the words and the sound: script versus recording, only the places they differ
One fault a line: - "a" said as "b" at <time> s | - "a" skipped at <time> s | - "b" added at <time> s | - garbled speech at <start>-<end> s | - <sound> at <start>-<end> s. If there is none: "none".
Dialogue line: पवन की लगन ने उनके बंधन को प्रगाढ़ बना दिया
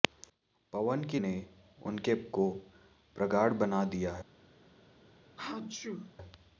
- "लगन" skipped at 1.2 s
- "बंधन" skipped at 2.1 s
- sneeze at 5.4-6.1 s